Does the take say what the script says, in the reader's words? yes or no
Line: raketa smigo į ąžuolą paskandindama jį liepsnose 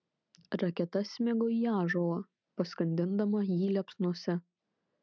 yes